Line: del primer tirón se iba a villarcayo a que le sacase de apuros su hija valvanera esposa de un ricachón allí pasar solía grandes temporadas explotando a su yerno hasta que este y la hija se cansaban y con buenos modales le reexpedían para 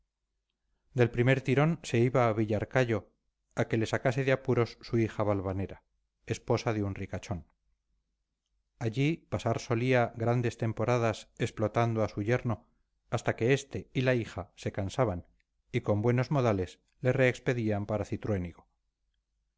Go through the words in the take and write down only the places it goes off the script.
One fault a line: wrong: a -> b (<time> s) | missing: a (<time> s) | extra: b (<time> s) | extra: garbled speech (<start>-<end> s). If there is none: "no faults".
no faults